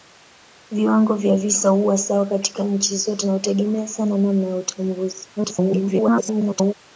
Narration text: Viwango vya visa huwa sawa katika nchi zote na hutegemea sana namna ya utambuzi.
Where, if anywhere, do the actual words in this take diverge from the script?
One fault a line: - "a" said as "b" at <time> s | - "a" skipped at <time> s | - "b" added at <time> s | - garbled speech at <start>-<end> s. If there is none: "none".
- garbled speech at 5.4-6.7 s